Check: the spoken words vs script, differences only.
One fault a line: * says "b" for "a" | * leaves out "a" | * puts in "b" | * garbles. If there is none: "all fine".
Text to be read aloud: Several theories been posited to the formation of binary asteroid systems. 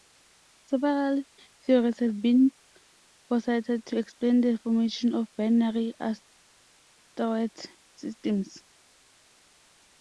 * puts in "have"
* puts in "explain"